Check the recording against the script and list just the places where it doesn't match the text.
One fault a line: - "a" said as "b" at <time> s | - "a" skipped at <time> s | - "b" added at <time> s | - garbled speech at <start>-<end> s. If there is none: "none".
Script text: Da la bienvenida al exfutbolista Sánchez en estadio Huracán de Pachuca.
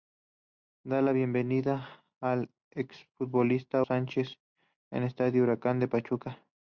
none